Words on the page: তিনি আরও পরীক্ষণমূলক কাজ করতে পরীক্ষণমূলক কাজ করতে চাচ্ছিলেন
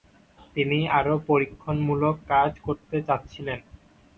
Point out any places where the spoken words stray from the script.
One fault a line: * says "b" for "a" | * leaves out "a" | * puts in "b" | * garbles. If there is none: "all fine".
* leaves out "পরীক্ষণমূলক কাজ করতে"